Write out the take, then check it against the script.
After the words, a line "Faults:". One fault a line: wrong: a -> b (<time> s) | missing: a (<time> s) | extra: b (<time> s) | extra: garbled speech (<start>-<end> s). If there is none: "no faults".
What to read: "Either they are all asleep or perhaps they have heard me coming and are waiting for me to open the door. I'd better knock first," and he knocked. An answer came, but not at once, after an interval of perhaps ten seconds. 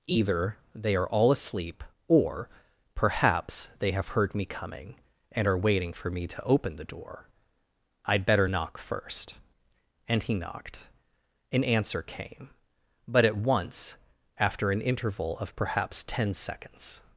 "Either they are all asleep or perhaps they have heard me coming and are waiting for me to open the door. I'd better knock first," and he knocked. An answer came, but at once, after an interval of perhaps ten seconds.
Faults:
missing: not (13.3 s)